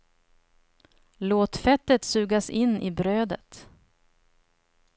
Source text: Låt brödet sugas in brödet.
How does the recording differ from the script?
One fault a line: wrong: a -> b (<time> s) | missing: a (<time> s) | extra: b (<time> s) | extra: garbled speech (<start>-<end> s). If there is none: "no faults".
wrong: brödet -> fettet (1.6 s)
extra: i (2.8 s)